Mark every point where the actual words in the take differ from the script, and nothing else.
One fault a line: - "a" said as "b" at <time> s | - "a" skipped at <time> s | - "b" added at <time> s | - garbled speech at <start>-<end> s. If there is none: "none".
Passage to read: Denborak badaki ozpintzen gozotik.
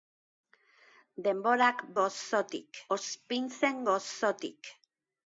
- "badaki" said as "gozotik" at 2.0 s